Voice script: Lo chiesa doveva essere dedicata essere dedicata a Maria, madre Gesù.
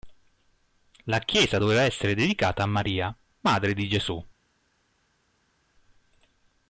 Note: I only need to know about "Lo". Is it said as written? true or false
false